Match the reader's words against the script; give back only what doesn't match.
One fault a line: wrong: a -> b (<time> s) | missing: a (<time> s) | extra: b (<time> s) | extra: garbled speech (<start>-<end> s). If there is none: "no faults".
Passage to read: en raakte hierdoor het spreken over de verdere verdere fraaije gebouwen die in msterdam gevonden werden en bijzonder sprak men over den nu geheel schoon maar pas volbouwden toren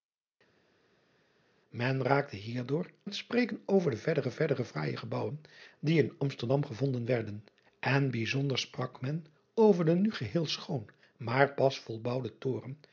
no faults